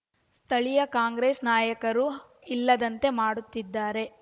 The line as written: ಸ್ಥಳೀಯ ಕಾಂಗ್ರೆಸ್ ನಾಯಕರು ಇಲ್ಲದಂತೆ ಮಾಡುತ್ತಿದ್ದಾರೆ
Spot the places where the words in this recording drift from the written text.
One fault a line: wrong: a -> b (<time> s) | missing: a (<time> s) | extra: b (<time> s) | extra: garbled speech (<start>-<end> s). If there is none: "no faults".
no faults